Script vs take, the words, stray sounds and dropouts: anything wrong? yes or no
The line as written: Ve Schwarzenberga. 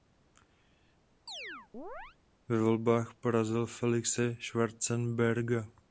yes